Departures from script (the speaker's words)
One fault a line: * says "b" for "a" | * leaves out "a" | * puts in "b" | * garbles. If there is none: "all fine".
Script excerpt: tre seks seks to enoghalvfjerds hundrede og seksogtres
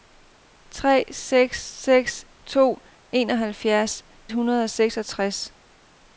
all fine